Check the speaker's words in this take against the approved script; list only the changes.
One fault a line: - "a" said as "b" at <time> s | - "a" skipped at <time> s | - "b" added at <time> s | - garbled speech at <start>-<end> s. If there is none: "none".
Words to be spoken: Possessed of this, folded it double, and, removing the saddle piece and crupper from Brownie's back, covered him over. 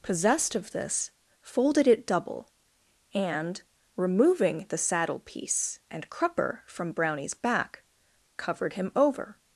none